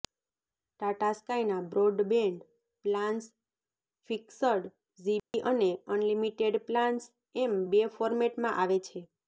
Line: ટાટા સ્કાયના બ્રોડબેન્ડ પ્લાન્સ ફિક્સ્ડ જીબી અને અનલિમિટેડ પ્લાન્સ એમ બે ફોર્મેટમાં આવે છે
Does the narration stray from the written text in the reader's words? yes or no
no